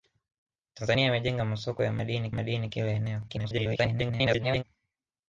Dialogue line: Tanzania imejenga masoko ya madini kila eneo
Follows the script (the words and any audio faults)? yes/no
no